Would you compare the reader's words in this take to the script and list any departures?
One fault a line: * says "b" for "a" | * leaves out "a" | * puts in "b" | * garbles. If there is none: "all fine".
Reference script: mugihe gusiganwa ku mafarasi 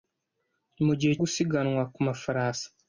all fine